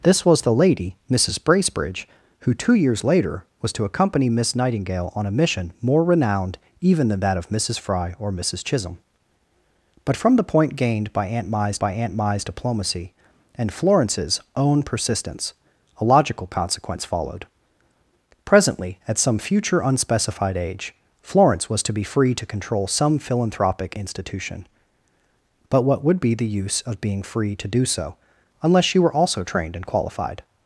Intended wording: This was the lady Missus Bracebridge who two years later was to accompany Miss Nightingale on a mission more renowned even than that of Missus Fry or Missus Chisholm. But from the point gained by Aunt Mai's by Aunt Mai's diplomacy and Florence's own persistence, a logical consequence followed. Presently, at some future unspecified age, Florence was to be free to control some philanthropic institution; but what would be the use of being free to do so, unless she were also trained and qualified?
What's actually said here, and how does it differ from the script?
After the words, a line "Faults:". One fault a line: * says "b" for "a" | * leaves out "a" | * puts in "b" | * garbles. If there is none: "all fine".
This was the lady Missus Bracebridge who two years later was to accompany Miss Nightingale on a mission more renowned even than that of Missus Fry or Missus Chisholm. But from the point gained by Aunt Mai's by Aunt Mai's diplomacy and Florence's own persistence, a logical consequence followed. Presently, at some future unspecified age, Florence was to be free to control some philanthropic institution; but what would be the use of being free to do so, unless she were also trained and qualified?
Faults:
all fine